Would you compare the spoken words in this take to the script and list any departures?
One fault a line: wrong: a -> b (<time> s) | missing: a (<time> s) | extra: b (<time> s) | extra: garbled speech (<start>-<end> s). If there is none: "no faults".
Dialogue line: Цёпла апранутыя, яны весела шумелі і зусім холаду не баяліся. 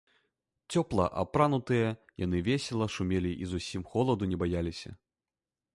no faults